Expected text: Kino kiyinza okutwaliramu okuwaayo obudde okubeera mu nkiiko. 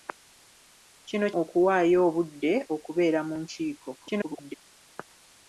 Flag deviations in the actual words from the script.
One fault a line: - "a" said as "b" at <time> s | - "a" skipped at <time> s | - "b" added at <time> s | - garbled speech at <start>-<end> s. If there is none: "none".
- "kiyinza okutwaliramu" skipped at 1.3 s
- garbled speech at 4.0-4.5 s